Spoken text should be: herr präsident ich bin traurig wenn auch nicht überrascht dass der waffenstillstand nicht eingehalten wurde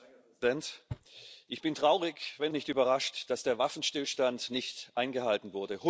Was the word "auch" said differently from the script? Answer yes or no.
yes